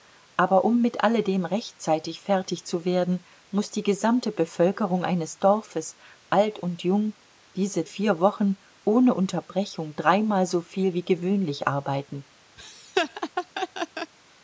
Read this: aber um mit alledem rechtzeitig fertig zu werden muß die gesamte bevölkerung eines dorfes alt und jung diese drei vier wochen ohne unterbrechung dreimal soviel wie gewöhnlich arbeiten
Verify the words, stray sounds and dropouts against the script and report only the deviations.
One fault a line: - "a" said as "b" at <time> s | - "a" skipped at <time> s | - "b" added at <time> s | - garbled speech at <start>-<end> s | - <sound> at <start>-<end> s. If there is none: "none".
- "drei" skipped at 7.8 s
- laugh at 12.6-14.1 s